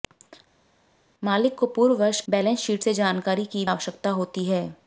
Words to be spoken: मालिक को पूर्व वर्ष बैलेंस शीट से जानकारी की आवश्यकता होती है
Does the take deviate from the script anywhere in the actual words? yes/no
no